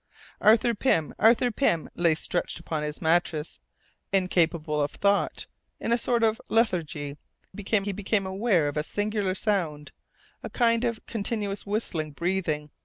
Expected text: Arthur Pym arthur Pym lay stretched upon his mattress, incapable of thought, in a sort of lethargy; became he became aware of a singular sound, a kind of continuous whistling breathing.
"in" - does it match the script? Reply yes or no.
yes